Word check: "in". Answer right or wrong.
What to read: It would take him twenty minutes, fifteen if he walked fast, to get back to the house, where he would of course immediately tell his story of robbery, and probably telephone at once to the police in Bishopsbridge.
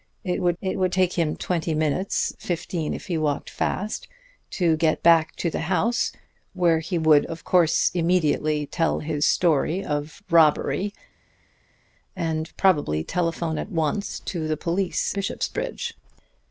wrong